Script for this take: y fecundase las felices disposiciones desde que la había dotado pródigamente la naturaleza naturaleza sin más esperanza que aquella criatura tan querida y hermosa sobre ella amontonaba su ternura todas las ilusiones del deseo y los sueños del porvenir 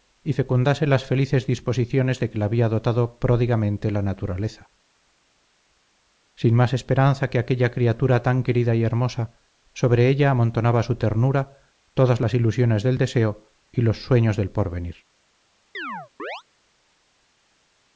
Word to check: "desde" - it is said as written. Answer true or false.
false